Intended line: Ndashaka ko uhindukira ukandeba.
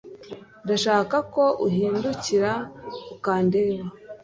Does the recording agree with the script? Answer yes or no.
yes